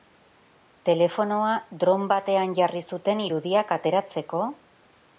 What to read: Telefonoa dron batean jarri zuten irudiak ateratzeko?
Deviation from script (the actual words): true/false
false